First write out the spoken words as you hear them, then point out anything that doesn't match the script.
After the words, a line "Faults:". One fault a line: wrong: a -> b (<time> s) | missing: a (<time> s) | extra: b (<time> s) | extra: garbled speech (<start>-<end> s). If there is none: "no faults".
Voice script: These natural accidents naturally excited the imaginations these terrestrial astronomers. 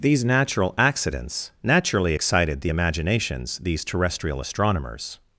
These natural accidents naturally excited the imaginations these terrestrial astronomers.
Faults:
no faults